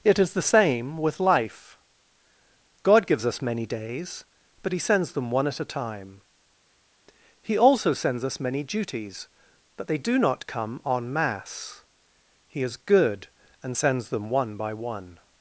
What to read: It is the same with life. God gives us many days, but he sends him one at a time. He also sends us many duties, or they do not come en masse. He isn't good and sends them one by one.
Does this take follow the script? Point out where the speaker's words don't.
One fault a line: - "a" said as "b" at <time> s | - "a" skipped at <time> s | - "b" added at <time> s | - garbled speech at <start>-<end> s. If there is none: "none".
- "him" said as "them" at 5.1 s
- "or" said as "but" at 9.8 s
- "isn't" said as "is" at 12.6 s